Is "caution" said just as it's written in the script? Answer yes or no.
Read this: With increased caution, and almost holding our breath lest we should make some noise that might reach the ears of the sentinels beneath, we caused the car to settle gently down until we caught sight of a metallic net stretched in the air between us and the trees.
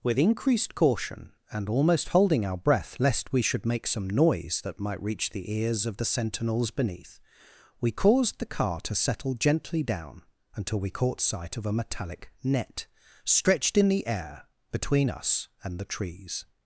yes